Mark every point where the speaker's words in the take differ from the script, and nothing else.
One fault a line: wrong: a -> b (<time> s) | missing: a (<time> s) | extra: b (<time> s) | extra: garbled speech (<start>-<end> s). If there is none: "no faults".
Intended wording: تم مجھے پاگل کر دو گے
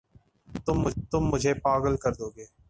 no faults